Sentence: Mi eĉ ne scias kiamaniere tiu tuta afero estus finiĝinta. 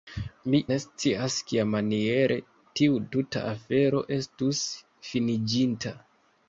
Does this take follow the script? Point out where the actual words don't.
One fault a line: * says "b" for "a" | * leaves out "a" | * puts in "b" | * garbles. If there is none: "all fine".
* leaves out "eĉ"